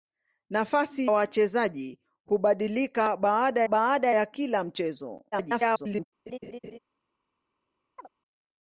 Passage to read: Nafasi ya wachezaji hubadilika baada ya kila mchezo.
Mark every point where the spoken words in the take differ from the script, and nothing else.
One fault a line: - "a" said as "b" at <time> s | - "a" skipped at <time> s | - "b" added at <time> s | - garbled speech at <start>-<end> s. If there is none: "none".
- "ya" skipped at 1.1 s
- "baada" added at 3.7 s
- garbled speech at 5.3-6.1 s